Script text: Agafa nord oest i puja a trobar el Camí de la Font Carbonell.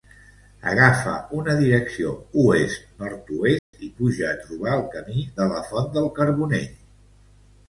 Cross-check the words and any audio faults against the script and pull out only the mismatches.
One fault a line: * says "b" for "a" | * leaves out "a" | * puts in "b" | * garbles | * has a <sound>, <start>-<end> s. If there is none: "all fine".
* puts in "una direcció oest"
* has a dropout, 3.6-3.7 s
* puts in "del"